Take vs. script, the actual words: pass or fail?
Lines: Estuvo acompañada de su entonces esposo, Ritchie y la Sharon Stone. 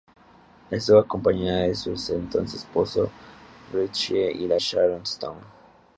pass